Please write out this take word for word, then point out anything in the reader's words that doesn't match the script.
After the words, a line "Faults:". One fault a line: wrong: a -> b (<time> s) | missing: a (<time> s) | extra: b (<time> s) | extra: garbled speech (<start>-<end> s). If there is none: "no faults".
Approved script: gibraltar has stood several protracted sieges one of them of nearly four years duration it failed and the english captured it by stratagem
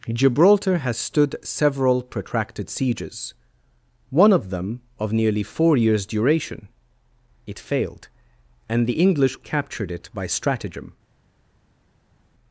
gibraltar has stood several protracted sieges one of them of nearly four years duration it failed and the english captured it by stratagem
Faults:
no faults